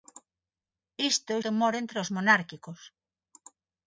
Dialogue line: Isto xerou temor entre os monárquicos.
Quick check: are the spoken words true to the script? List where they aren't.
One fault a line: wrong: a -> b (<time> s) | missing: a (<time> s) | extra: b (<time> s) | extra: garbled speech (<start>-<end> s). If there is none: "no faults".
missing: xerou (1.4 s)